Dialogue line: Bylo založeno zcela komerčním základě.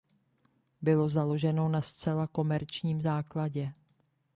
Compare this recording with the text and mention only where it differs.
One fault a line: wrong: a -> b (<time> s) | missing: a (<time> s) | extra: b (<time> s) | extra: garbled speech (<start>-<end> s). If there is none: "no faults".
extra: na (1.7 s)